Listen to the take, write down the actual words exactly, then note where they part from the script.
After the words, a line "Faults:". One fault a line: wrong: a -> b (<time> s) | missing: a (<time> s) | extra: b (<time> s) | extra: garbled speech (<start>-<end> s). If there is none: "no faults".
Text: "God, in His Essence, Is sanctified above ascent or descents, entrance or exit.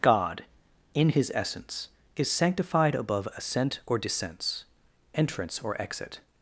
"God, in His Essence, Is sanctified above ascent or descents, entrance or exit.
Faults:
no faults